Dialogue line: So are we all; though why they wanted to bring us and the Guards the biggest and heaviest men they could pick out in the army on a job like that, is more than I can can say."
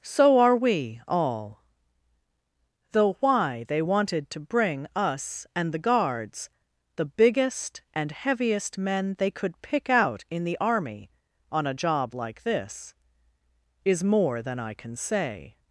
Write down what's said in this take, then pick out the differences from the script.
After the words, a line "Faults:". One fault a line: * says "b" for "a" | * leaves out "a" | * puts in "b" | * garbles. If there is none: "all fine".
So are we all; though why they wanted to bring us and the Guards the biggest and heaviest men they could pick out in the army on a job like this, is more than I can say."
Faults:
* says "this" for "that"
* leaves out "can"